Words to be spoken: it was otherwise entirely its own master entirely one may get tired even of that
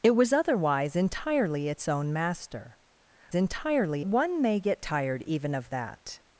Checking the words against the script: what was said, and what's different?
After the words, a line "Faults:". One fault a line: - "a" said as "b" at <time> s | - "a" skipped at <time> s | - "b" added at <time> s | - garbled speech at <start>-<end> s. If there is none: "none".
it was otherwise entirely its own master entirely one may get tired even of that
Faults:
none